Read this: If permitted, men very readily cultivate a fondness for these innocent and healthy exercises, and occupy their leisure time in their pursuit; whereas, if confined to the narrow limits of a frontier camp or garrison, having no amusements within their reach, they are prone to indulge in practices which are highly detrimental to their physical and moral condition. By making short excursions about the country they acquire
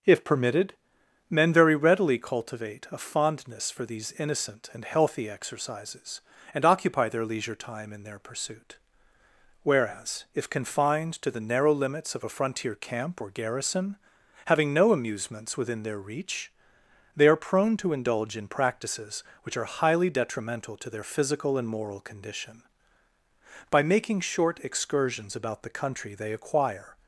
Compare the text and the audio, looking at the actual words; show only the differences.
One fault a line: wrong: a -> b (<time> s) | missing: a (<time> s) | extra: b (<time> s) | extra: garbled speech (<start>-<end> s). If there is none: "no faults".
no faults